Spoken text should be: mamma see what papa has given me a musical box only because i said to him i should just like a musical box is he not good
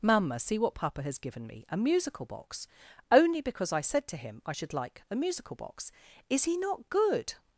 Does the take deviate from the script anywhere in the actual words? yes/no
yes